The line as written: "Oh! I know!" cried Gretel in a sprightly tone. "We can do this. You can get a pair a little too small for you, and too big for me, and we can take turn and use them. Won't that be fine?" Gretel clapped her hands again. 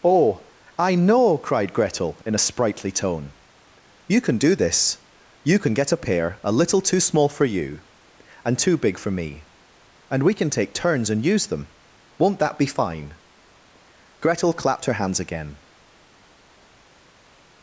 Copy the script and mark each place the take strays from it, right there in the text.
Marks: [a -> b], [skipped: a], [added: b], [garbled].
"Oh! I know!" cried Gretel in a sprightly tone. ["We -> You] can do this. You can get a pair a little too small for you, and too big for me, and we can take [turn -> turns] and use them. Won't that be fine?" Gretel clapped her hands again.